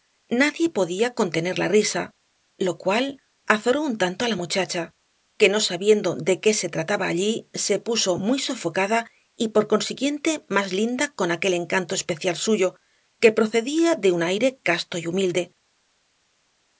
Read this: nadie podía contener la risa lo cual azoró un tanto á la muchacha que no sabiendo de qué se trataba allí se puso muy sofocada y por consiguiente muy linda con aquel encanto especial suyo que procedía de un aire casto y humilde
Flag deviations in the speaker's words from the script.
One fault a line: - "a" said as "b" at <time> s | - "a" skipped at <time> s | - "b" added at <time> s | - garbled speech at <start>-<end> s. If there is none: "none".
- "muy" said as "más" at 10.5 s